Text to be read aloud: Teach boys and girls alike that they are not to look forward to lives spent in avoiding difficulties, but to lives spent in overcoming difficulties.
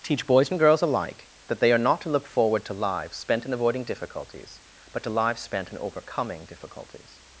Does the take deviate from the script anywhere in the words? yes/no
no